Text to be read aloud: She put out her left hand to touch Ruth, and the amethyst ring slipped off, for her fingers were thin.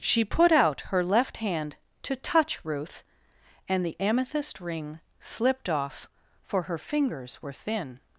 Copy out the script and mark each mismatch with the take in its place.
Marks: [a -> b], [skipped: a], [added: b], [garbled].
She put out her left hand to touch Ruth, and the amethyst ring slipped off, for her fingers were thin.